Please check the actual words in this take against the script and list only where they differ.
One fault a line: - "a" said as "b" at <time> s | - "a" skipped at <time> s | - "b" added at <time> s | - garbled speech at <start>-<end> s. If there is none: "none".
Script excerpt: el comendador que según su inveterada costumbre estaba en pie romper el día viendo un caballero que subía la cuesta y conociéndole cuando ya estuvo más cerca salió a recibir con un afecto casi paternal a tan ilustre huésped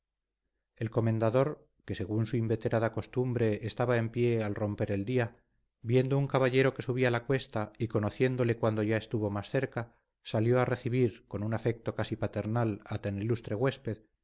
- "al" added at 4.4 s